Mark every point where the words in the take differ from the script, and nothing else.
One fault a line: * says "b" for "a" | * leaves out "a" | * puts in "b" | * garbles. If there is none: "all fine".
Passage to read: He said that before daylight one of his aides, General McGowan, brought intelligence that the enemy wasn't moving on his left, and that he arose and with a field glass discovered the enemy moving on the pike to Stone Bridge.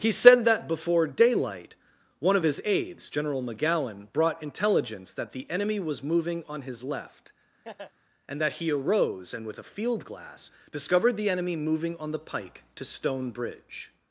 * says "was" for "wasn't"